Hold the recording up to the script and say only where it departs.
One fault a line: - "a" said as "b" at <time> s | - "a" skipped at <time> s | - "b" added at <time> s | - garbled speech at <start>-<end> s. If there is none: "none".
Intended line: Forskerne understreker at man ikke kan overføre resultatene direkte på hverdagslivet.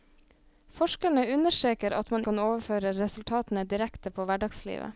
- "ikke" skipped at 2.2 s